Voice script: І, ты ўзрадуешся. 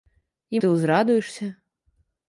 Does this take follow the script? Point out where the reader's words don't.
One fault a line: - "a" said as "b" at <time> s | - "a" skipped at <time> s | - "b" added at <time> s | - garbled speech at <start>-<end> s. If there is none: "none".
none